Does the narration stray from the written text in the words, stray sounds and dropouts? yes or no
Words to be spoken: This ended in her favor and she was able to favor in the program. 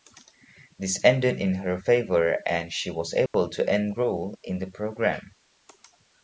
yes